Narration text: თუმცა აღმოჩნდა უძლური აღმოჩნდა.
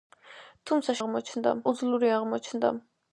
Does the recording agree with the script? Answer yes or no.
yes